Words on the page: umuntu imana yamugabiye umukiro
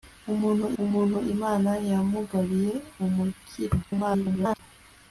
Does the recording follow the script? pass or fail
fail